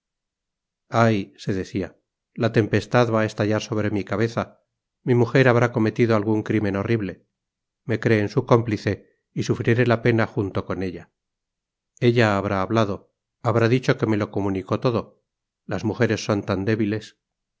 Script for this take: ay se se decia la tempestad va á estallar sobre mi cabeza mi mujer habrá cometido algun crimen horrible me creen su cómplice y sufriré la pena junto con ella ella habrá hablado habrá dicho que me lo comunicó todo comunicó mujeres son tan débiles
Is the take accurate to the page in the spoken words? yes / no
no